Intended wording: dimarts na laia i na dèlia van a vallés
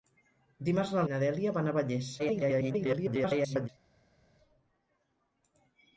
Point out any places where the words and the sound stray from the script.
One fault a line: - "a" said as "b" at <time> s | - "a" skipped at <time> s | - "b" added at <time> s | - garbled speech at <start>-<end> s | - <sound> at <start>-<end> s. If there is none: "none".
- "laia" skipped at 1.0 s
- garbled speech at 2.2-3.7 s